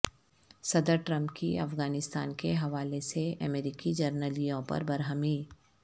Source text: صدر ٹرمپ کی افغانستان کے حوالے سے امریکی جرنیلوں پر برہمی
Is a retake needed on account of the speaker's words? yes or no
no